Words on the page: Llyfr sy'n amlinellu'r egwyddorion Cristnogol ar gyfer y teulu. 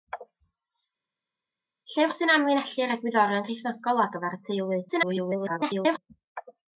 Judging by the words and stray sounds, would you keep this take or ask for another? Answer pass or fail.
fail